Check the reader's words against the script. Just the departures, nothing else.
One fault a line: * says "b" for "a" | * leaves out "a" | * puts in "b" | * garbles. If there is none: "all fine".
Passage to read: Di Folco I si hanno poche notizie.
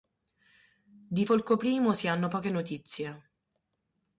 all fine